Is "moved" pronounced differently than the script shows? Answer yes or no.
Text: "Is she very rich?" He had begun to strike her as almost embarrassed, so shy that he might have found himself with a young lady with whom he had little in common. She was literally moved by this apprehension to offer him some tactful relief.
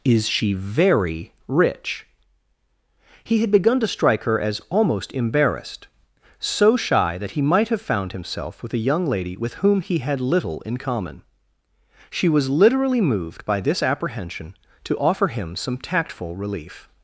no